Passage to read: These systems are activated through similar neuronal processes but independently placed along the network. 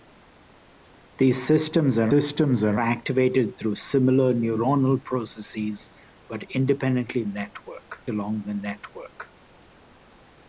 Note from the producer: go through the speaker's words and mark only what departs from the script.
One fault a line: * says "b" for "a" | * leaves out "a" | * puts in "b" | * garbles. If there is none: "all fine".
* puts in "systems are"
* says "network" for "placed"